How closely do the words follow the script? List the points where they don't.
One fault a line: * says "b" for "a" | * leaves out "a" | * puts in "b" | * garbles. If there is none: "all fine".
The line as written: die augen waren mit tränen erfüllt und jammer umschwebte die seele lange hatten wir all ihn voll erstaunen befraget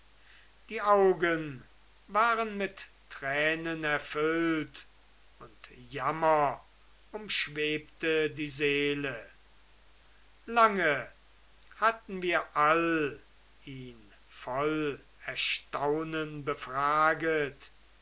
all fine